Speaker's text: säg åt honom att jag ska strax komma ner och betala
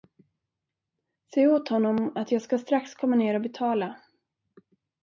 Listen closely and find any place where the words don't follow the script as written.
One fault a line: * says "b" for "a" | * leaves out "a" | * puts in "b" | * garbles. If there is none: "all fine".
all fine